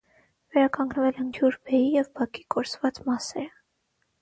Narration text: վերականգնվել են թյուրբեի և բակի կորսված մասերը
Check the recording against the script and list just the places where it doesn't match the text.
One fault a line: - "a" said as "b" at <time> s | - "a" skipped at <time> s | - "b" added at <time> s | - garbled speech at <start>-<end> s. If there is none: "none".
none